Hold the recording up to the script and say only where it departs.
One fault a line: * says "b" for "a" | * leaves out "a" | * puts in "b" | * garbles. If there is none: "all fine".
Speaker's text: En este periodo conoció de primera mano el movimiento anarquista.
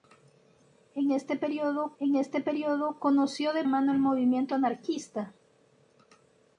* puts in "en este periodo"
* leaves out "primera"